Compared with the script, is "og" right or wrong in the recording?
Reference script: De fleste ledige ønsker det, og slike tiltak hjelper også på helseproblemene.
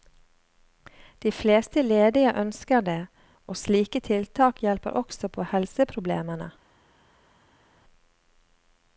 right